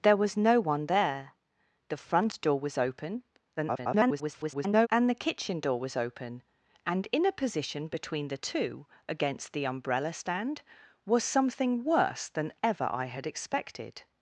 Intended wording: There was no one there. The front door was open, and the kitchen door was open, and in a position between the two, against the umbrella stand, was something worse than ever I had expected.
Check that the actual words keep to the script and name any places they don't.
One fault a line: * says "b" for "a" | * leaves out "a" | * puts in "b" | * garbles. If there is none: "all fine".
* garbles